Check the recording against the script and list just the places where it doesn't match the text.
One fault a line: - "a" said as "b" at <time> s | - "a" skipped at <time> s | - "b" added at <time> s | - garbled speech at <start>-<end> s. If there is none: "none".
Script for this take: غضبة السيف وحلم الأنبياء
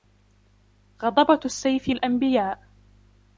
- "وحلم" skipped at 1.9 s